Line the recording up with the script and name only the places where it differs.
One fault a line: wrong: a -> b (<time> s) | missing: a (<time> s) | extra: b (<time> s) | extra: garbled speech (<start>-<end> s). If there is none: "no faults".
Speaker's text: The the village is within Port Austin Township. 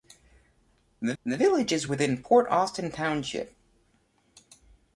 no faults